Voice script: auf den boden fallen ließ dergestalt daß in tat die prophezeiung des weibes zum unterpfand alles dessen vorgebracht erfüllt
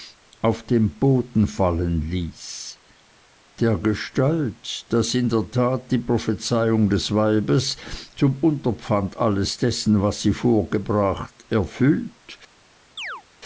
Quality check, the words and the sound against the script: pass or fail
fail